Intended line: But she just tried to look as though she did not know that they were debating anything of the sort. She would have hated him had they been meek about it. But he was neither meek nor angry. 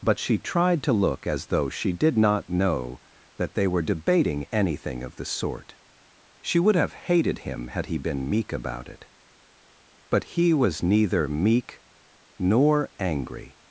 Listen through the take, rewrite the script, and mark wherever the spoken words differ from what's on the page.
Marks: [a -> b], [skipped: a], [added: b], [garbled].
But she [skipped: just] tried to look as though she did not know that they were debating anything of the sort. She would have hated him had [they -> he] been meek about it. But he was neither meek nor angry.